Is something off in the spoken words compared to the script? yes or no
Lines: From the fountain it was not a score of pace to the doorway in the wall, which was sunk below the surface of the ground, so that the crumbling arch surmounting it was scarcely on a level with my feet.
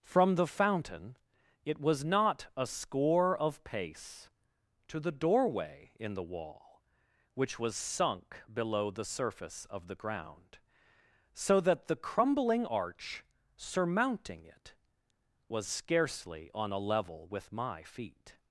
no